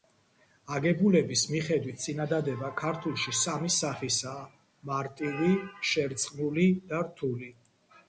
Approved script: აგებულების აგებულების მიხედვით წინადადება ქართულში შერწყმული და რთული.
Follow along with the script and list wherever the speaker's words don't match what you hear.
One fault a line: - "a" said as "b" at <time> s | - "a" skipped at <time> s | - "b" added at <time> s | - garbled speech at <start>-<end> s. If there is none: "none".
- "აგებულების" skipped at 1.4 s
- "სამი სახისაა მარტივი" added at 3.4 s